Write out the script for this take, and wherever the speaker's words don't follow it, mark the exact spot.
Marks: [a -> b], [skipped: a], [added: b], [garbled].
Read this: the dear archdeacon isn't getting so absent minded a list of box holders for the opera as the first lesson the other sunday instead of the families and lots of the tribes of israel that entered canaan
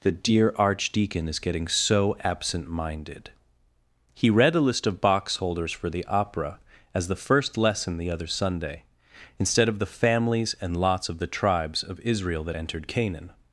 the dear archdeacon [isn't -> is] getting so absent minded [added: he read] a list of box holders for the opera as the first lesson the other sunday instead of the families and lots of the tribes of israel that entered canaan